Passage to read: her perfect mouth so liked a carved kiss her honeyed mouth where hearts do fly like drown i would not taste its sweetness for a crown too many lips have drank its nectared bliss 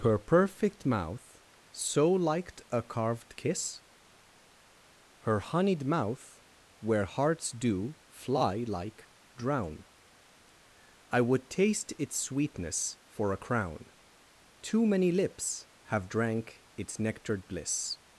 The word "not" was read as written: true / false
false